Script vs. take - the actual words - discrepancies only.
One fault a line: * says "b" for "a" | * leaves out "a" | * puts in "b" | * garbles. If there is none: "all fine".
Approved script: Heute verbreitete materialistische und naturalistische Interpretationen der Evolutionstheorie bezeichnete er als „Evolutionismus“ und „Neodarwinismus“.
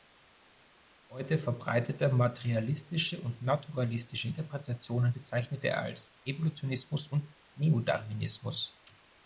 * leaves out "der Evolutionstheorie"